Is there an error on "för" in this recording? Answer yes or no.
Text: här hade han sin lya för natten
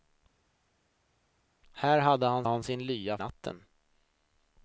yes